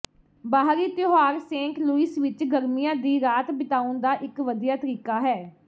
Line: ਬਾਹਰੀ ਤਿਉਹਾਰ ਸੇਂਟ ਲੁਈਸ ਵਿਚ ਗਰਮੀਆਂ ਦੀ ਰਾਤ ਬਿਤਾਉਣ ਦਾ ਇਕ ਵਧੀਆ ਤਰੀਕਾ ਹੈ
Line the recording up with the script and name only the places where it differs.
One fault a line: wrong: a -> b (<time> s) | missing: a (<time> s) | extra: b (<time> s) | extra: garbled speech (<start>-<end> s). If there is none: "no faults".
no faults